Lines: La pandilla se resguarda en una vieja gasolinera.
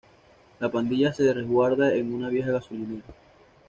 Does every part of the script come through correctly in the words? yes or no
yes